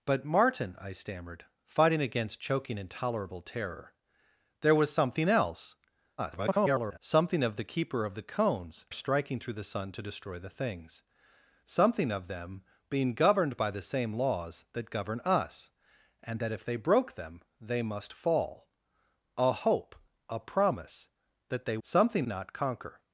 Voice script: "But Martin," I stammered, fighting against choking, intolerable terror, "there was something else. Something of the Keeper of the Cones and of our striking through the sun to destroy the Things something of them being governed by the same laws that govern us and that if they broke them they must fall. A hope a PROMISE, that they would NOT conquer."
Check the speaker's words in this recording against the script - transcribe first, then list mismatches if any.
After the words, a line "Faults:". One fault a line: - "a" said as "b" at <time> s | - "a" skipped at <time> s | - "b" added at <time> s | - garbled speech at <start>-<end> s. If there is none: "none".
"But Martin," I stammered, fighting against choking, intolerable terror, "there was something else. [garbled] Something of the Keeper of the Cones striking through the sun to destroy the Things something of them being governed by the same laws that govern us and that if they broke them they must fall. A hope a PROMISE, that they something NOT conquer."
Faults:
- garbled speech at 6.2-7.0 s
- "and of our" skipped at 8.9 s
- "would" said as "something" at 21.8 s